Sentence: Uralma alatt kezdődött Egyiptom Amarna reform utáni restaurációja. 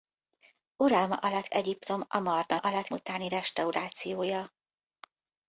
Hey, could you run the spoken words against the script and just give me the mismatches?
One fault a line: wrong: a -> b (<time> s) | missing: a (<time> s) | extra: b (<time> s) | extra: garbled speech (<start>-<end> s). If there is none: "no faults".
missing: kezdődött (1.5 s)
wrong: reform -> alatt (2.6 s)